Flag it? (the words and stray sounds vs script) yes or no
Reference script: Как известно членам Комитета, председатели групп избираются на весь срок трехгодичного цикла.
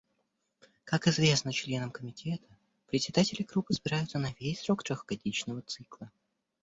no